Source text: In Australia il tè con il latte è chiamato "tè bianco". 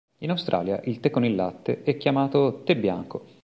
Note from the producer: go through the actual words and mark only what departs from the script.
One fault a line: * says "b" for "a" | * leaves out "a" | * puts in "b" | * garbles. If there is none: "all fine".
all fine